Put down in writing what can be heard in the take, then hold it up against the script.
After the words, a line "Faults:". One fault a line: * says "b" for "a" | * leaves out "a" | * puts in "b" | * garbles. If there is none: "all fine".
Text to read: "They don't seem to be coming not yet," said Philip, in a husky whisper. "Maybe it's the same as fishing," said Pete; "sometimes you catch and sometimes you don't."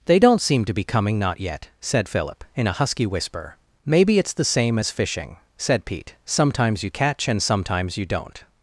"They don't seem to be coming not yet," said Philip, in a husky whisper. "Maybe it's the same as fishing," said Pete; "sometimes you catch and sometimes you don't."
Faults:
all fine